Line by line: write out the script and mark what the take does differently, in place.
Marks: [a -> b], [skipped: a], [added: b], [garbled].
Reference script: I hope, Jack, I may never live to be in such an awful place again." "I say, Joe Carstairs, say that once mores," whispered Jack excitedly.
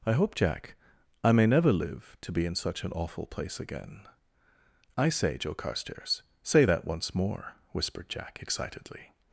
I hope, Jack, I may never live to be in such an awful place again." "I say, Joe Carstairs, say that once [mores," -> more] whispered Jack excitedly.